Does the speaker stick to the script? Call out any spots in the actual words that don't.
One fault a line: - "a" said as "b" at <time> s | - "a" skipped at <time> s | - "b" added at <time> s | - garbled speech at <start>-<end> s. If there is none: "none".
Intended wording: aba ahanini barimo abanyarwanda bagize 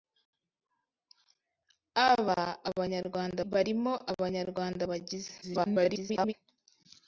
- "ahanini" said as "abanyarwanda" at 2.7 s
- garbled speech at 5.4-6.3 s